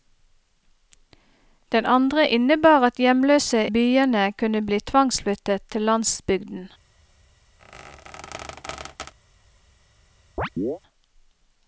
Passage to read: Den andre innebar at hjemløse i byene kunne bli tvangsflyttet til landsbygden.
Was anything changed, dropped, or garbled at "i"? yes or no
yes